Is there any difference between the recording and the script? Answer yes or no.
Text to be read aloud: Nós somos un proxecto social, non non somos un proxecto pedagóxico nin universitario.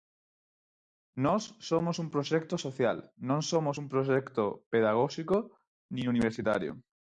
yes